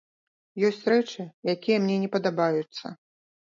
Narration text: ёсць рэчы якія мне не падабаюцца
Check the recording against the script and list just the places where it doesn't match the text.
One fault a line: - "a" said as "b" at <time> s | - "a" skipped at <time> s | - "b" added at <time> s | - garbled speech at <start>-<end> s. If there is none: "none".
none